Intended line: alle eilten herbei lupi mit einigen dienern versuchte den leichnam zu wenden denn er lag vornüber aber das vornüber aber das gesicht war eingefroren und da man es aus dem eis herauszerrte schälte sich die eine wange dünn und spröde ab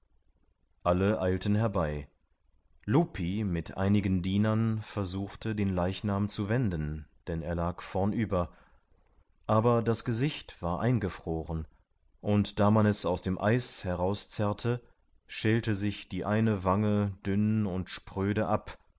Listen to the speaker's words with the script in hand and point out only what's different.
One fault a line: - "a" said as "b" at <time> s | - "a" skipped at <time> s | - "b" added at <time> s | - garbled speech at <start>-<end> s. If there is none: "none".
- "vornüber aber das" skipped at 10.0 s